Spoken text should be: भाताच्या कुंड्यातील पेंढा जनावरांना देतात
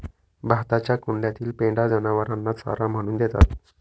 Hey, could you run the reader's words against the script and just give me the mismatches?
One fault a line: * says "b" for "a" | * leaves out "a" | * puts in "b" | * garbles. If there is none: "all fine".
* puts in "चारा म्हणून"